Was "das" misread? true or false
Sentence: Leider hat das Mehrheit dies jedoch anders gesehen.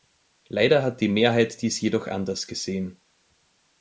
true